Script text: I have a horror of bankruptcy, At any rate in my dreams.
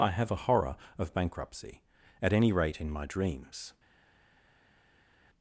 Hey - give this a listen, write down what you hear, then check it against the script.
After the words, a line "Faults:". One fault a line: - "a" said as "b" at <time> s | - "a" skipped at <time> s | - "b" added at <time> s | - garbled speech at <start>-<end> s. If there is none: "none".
I have a horror of bankruptcy, At any rate in my dreams.
Faults:
none